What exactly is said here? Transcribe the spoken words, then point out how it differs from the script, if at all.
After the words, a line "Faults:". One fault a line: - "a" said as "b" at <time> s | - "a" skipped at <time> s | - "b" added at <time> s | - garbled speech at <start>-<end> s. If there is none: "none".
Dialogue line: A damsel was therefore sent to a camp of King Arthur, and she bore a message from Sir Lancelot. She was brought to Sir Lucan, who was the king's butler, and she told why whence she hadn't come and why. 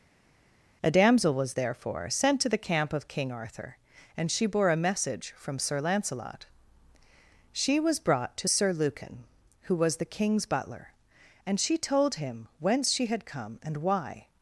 A damsel was therefore sent to the camp of King Arthur, and she bore a message from Sir Lancelot. She was brought to Sir Lucan, who was the king's butler, and she told him whence she had come and why.
Faults:
- "a" said as "the" at 2.5 s
- "why" said as "him" at 12.2 s
- "hadn't" said as "had" at 13.1 s